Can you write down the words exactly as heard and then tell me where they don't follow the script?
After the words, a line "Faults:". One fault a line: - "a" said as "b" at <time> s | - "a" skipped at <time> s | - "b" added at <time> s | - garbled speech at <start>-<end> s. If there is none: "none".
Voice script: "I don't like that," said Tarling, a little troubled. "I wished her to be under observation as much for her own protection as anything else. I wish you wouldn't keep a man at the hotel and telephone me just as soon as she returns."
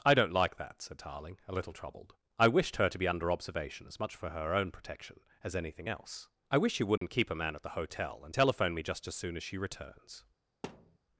"I don't like that," said Tarling, a little troubled. "I wished her to be under observation as much for her own protection as anything else. I wish you wouldn't keep a man at the hotel and telephone me just as soon as she returns."
Faults:
none